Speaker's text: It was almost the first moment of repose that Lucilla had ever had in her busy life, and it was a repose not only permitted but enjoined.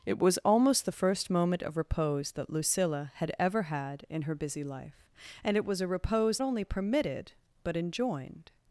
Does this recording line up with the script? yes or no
no